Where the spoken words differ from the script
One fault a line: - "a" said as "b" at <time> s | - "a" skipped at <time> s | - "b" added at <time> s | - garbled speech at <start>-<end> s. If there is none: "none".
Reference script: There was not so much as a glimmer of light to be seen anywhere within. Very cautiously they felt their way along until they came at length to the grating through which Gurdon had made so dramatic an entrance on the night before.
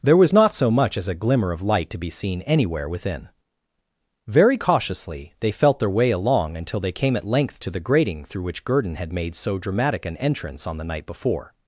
none